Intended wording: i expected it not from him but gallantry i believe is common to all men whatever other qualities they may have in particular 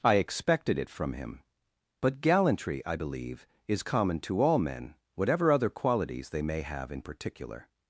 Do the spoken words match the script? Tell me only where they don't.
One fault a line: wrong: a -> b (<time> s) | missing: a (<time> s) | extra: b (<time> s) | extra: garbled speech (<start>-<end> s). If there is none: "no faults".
missing: not (0.9 s)